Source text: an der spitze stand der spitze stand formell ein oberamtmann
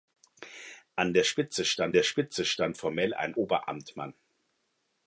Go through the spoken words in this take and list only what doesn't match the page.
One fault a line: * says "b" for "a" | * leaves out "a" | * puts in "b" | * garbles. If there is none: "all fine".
all fine